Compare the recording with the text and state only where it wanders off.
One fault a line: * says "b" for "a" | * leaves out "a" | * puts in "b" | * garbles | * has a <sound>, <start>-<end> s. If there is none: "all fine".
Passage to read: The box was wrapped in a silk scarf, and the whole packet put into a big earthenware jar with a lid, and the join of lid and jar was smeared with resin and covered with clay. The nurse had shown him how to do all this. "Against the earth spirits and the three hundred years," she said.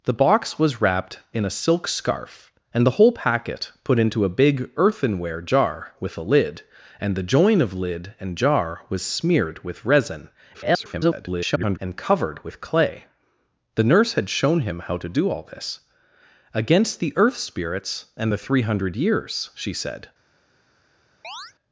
* garbles
* has a chirp, 21.2-21.5 s